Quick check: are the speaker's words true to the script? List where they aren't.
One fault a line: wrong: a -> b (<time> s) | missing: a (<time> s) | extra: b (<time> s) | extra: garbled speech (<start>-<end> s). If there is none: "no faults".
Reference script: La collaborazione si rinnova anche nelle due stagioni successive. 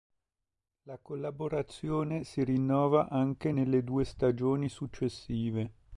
no faults